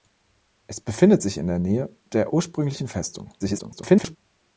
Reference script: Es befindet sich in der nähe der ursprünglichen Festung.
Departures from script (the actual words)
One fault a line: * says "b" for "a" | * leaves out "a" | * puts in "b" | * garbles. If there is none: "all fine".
* garbles